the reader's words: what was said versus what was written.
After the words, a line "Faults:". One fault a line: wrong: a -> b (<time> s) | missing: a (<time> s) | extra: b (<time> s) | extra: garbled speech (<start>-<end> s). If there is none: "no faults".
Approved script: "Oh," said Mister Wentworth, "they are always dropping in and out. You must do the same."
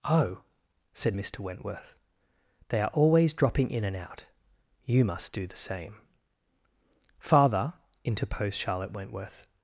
"Oh," said Mister Wentworth, "they are always dropping in and out. You must do the same." "Father," interposed Charlotte Wentworth
Faults:
extra: Father interposed Charlotte Wentworth (7.2 s)